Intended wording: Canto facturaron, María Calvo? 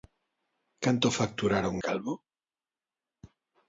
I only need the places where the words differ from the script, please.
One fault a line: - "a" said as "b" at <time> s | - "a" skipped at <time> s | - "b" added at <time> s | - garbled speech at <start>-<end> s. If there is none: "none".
- "María" skipped at 1.8 s